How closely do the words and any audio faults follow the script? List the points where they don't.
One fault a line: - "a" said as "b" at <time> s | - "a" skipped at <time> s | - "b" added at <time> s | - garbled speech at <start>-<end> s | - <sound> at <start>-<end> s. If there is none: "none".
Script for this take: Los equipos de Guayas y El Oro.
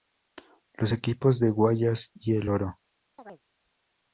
- chirp at 3.2-3.4 s